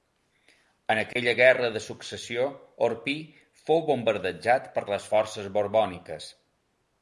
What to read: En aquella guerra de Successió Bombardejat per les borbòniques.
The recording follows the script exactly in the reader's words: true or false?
false